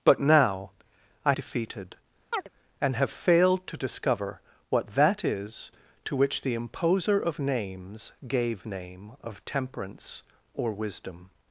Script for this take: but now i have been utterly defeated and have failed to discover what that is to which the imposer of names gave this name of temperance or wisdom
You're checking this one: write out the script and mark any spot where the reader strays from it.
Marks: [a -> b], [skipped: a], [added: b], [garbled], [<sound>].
but now i [skipped: have been utterly] defeated [chirp] and have failed to discover what that is to which the imposer of names gave [skipped: this] name of temperance or wisdom